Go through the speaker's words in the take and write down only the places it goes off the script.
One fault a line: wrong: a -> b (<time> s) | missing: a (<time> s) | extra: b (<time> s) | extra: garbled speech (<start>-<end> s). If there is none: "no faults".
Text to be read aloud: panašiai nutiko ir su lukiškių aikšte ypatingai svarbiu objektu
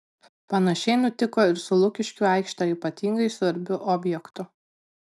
no faults